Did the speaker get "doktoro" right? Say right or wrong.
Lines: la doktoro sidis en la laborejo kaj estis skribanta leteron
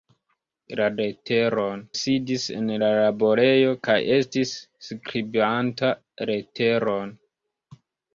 wrong